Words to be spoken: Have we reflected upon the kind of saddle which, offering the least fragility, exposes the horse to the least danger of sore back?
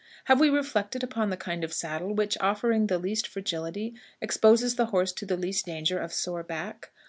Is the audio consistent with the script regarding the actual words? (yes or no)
yes